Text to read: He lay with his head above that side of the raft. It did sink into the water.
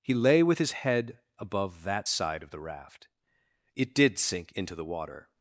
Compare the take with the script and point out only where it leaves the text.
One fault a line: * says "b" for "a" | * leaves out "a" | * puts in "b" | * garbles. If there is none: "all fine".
all fine